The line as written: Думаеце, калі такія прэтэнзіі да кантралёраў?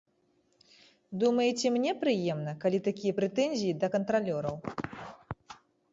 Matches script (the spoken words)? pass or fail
fail